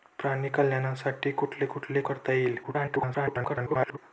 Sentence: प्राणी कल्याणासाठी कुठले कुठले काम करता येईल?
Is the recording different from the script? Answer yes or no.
yes